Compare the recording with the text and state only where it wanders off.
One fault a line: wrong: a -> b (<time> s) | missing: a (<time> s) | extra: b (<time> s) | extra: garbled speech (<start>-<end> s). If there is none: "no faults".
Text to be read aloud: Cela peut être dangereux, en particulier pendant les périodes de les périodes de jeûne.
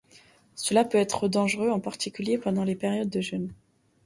missing: les périodes de (3.2 s)